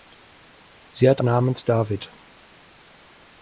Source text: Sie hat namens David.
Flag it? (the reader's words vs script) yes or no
no